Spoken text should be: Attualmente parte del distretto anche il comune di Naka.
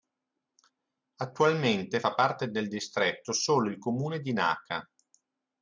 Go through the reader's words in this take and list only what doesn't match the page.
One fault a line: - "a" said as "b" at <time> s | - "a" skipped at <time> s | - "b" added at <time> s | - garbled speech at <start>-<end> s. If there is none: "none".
- "fa" added at 2.0 s
- "anche" said as "solo" at 3.3 s